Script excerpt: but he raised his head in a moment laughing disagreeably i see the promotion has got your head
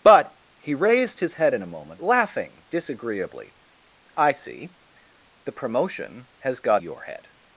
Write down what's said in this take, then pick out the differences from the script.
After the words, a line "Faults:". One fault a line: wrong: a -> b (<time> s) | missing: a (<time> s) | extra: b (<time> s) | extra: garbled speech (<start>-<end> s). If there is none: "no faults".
but he raised his head in a moment laughing disagreeably i see the promotion has got your head
Faults:
no faults